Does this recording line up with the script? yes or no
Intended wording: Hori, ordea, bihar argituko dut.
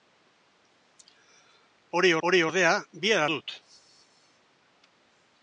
no